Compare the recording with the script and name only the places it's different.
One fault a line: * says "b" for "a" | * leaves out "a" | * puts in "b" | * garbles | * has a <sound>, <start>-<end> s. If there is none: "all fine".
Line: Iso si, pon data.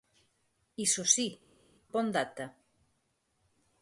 all fine